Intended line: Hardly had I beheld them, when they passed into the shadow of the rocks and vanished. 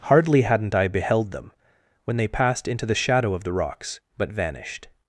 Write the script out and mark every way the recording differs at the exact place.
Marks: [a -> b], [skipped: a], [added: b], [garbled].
Hardly [had -> hadn't] I beheld them, when they passed into the shadow of the rocks [and -> but] vanished.